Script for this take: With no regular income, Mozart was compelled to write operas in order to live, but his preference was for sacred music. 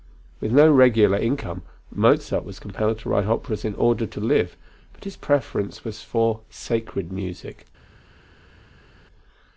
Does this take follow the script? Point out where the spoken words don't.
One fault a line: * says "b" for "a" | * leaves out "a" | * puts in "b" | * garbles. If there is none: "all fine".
all fine